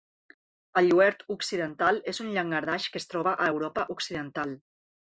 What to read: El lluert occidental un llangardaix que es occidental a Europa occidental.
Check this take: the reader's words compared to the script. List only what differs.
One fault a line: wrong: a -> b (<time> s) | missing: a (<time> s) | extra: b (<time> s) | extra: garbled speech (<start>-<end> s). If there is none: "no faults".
extra: és (2.1 s)
wrong: occidental -> troba (3.1 s)